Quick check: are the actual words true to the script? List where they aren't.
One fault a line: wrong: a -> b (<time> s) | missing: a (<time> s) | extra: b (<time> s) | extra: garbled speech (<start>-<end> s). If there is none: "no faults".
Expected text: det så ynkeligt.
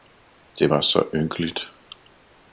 extra: var (0.7 s)